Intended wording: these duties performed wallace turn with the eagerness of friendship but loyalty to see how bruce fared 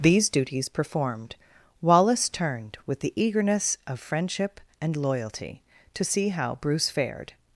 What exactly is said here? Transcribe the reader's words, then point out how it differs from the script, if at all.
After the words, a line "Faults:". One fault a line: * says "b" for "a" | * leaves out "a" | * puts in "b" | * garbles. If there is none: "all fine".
these duties performed wallace turned with the eagerness of friendship and loyalty to see how bruce fared
Faults:
* says "turned" for "turn"
* says "and" for "but"